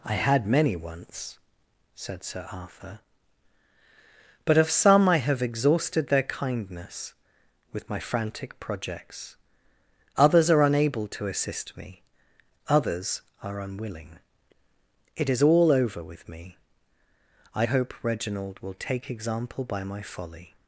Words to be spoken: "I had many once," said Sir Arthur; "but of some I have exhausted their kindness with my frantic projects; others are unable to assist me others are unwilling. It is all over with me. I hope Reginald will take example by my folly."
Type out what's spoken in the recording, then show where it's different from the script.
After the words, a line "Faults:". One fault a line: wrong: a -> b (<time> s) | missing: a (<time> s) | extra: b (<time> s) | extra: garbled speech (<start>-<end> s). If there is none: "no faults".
"I had many once," said Sir Arthur; "but of some I have exhausted their kindness with my frantic projects; others are unable to assist me others are unwilling. It is all over with me. I hope Reginald will take example by my folly."
Faults:
no faults